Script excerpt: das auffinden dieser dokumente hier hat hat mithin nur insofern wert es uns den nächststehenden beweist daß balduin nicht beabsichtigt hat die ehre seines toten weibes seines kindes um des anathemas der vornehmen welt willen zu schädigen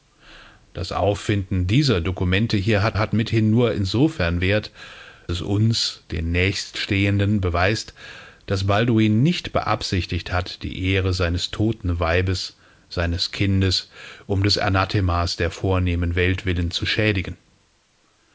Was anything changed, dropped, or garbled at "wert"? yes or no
no